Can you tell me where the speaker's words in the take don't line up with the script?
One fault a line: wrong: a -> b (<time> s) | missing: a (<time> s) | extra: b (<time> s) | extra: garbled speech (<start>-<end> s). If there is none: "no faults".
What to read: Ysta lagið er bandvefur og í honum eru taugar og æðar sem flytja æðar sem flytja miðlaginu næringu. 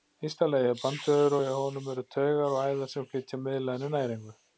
missing: æðar sem flytja (3.4 s)